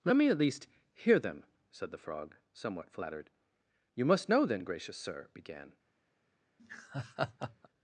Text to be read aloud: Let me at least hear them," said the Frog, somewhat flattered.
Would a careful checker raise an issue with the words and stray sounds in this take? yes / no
yes